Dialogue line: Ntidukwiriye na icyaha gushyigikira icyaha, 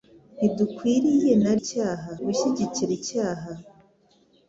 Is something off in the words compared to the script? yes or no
no